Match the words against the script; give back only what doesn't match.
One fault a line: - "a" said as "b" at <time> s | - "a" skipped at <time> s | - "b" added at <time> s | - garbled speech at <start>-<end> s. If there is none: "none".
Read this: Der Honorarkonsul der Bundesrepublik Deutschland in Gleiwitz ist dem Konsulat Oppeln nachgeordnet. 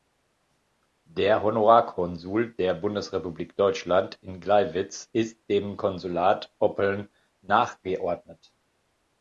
none